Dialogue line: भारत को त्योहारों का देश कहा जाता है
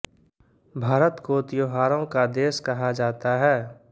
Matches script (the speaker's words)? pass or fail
pass